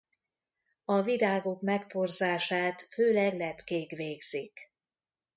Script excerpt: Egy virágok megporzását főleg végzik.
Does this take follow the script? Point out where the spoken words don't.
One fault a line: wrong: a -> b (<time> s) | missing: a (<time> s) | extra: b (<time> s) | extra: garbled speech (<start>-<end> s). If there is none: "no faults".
wrong: Egy -> A (0.8 s)
extra: lepkék (3.3 s)